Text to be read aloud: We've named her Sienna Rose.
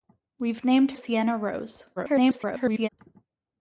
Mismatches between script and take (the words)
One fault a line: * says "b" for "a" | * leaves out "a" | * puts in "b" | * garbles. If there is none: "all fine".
* leaves out "her"
* garbles